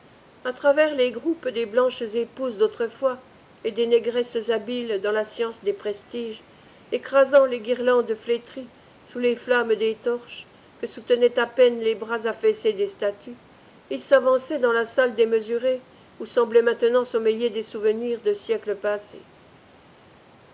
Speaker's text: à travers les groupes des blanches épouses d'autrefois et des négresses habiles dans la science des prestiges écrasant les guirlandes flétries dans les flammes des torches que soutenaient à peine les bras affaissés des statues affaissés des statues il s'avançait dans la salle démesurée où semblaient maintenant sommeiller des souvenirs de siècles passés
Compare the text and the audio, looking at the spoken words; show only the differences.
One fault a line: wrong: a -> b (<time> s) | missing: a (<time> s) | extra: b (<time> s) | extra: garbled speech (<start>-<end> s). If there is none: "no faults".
wrong: dans -> sous (9.0 s)
missing: affaissés des statues (13.4 s)